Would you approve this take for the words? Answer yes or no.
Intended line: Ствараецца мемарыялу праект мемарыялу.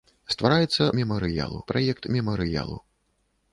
yes